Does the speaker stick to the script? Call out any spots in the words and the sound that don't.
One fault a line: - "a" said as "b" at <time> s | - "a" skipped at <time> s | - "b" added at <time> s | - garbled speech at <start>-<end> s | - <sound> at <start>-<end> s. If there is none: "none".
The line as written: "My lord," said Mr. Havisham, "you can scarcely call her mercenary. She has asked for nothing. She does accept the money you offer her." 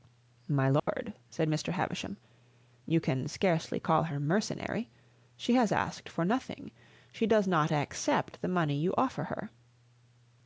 - dropout at 0.8-0.9 s
- "not" added at 7.5 s